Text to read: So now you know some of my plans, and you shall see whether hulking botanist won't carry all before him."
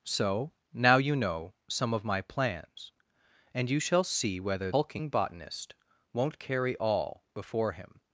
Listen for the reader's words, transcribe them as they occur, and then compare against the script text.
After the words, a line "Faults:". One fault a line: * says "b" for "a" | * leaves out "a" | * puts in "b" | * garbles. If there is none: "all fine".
So now you know some of my plans, and you shall see whether hulking botanist won't carry all before him."
Faults:
all fine